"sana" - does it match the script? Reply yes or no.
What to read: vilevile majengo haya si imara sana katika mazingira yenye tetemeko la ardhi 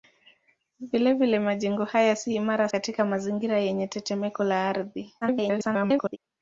no